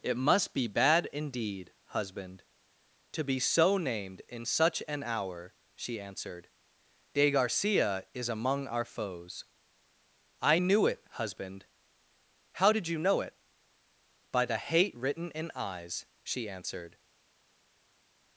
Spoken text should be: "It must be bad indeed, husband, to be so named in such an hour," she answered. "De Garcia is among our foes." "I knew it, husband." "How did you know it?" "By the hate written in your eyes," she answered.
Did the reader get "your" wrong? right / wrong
wrong